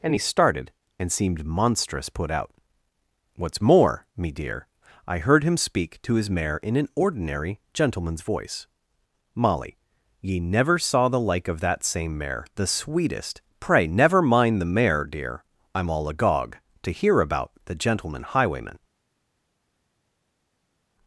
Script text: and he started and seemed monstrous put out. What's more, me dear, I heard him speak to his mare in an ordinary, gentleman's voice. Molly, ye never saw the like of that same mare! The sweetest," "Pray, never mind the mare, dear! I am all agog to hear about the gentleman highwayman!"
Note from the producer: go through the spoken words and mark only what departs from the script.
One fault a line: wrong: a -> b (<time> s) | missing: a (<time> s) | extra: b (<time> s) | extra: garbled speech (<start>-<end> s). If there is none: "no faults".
no faults